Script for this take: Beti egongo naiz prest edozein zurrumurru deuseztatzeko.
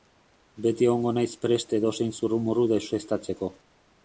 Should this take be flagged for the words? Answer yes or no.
no